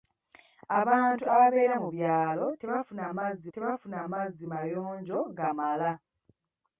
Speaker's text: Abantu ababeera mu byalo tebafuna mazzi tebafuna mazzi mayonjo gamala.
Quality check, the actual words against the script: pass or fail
pass